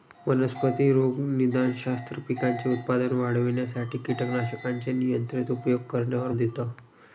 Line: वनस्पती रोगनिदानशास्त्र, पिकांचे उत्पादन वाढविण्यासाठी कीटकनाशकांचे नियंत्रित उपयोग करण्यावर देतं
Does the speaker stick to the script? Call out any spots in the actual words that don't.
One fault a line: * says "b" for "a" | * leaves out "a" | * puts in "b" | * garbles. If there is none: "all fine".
all fine